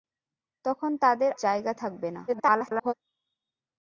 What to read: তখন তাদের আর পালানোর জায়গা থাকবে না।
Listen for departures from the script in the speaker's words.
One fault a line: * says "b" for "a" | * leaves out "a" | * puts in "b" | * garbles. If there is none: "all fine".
* leaves out "আর পালানোর"
* garbles